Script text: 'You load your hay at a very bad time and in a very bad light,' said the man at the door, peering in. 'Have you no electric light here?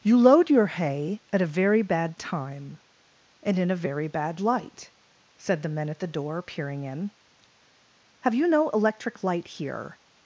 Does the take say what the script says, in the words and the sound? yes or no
no